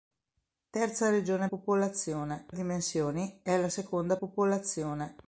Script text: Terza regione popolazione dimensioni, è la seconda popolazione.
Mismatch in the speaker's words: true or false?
false